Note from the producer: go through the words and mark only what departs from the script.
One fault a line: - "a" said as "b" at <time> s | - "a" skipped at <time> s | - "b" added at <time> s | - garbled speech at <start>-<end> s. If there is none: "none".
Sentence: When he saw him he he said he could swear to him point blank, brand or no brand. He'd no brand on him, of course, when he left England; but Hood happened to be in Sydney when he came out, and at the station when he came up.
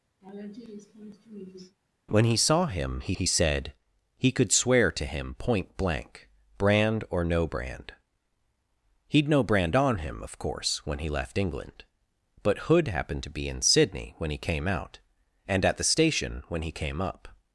none